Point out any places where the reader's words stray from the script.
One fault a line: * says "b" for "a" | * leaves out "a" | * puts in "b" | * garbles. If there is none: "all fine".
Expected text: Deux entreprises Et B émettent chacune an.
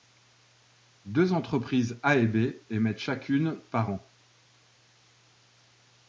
* puts in "A"
* puts in "par"